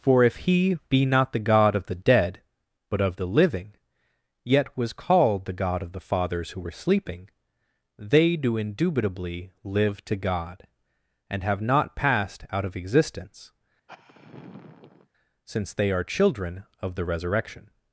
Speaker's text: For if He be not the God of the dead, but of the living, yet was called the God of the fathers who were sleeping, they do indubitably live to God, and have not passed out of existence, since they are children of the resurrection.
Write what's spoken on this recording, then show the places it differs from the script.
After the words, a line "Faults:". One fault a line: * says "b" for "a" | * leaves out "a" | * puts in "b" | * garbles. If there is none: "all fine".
For if He be not the God of the dead, but of the living, yet was called the God of the fathers who were sleeping, they do indubitably live to God, and have not passed out of existence, since they are children of the resurrection.
Faults:
all fine